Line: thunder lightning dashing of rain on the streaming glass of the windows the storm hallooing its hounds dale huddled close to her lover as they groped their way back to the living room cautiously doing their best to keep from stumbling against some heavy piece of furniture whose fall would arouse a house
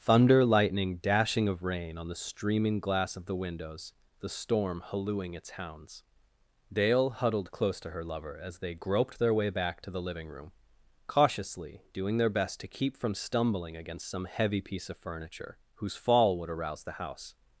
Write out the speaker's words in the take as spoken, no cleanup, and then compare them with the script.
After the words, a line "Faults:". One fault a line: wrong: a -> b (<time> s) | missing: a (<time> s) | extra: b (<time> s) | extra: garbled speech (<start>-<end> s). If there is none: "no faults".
thunder lightning dashing of rain on the streaming glass of the windows the storm hallooing its hounds dale huddled close to her lover as they groped their way back to the living room cautiously doing their best to keep from stumbling against some heavy piece of furniture whose fall would arouse the house
Faults:
wrong: a -> the (16.8 s)